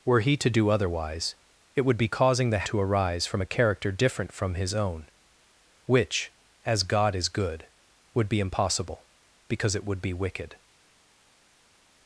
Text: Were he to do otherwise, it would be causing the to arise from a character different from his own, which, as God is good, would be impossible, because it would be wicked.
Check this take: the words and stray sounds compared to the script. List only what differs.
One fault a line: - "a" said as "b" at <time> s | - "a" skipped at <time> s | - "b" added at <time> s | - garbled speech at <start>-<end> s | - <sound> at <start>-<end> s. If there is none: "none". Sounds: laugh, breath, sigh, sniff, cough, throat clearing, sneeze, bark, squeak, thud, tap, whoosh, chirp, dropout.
none